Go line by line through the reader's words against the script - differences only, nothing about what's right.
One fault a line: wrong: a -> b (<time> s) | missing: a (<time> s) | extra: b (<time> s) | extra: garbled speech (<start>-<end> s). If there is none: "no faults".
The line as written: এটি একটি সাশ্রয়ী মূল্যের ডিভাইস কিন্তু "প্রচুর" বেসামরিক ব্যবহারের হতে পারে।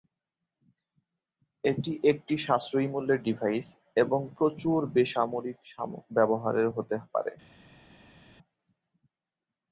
wrong: কিন্তু -> এবং (4.0 s)